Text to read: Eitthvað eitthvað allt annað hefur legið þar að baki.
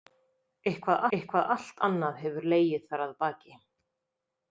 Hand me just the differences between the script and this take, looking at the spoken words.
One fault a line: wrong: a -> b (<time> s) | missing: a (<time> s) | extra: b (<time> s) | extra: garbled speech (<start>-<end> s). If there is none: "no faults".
no faults